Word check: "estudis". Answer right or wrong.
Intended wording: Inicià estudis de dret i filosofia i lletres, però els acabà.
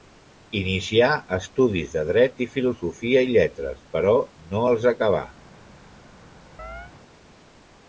right